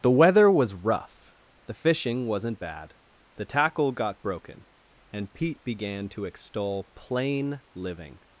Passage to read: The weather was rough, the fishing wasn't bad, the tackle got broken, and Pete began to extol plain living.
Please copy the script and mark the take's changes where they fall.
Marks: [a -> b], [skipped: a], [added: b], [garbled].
The weather was rough, the fishing wasn't bad, the tackle got broken, and Pete began to extol plain living.